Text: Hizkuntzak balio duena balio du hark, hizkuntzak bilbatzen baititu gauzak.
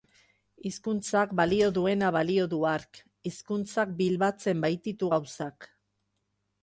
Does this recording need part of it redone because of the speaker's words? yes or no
no